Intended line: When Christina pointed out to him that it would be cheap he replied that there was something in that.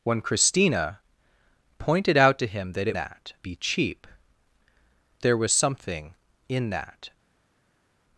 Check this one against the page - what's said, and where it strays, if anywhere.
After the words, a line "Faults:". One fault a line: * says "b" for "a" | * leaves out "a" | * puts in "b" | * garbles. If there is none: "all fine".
When Christina pointed out to him that it that be cheap there was something in that.
Faults:
* says "that" for "would"
* leaves out "he replied that"